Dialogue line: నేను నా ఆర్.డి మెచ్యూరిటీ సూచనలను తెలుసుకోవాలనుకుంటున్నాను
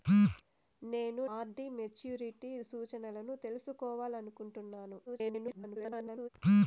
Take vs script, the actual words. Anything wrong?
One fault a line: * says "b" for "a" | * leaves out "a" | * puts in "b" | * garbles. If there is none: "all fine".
* leaves out "నా"
* garbles